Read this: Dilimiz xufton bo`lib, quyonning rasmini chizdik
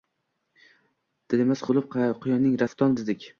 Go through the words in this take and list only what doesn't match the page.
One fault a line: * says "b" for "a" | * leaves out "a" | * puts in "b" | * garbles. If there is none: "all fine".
* leaves out "xufton"
* says "xufton" for "rasmini"